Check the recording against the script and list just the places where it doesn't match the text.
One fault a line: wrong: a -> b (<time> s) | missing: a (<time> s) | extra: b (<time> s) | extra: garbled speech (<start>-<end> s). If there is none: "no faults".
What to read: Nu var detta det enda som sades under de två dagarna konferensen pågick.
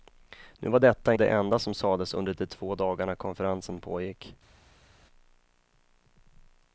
no faults